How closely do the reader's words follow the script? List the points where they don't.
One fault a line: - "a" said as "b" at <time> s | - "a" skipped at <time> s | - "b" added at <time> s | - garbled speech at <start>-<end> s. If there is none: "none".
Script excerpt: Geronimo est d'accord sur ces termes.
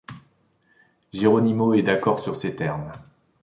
none